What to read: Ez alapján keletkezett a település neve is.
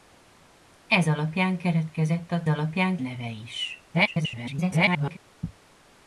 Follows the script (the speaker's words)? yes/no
no